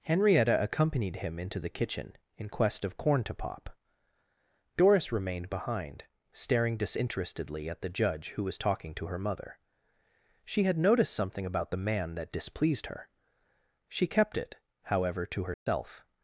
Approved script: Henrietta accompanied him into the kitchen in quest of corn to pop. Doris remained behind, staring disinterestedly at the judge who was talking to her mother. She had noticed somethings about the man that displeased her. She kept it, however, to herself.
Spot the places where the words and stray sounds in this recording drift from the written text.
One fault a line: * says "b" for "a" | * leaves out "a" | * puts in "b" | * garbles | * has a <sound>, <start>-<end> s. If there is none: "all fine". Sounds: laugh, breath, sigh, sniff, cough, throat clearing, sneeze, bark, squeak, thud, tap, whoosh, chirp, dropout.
* says "something" for "somethings"
* has a dropout, 15.5-15.7 s